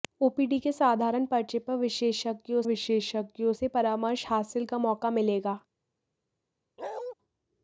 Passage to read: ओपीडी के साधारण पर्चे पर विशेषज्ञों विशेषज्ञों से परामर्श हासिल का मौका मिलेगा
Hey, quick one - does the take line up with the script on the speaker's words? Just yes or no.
yes